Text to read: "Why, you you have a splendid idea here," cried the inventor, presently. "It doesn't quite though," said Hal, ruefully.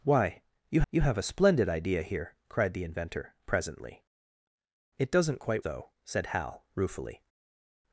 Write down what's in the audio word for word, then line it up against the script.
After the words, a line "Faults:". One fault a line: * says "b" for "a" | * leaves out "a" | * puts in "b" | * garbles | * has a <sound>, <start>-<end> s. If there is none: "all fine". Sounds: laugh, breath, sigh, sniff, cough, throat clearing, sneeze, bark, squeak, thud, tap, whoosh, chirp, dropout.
"Why, you you have a splendid idea here," cried the inventor, presently. "It doesn't quite though," said Hal, ruefully.
Faults:
all fine